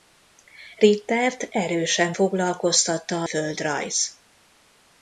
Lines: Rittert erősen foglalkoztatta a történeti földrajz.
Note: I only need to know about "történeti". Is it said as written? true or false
false